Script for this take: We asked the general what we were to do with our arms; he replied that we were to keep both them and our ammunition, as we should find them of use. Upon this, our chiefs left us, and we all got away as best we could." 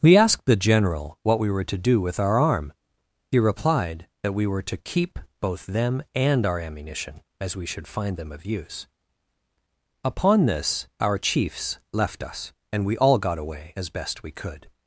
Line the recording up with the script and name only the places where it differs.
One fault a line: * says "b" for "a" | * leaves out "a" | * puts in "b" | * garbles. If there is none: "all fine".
* says "arm" for "arms"